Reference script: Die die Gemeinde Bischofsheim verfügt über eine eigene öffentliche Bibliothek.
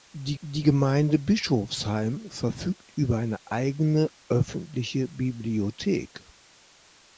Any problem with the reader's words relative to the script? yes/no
no